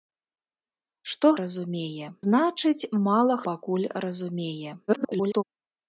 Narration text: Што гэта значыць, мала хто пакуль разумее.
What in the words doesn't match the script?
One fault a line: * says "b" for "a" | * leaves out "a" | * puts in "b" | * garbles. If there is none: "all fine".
* says "разумее" for "гэта"
* leaves out "хто"
* garbles